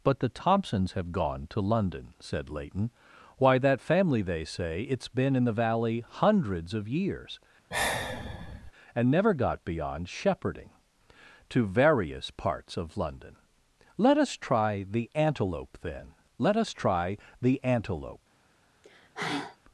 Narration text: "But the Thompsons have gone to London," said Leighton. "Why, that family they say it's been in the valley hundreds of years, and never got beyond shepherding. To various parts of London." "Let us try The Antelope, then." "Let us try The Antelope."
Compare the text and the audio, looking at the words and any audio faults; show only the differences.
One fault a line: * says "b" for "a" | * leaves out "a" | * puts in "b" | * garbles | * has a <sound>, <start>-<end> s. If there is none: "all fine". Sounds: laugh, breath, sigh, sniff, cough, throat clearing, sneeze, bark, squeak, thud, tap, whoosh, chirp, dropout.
* has a sigh, 7.7-8.7 s
* has a sigh, 18.8-19.6 s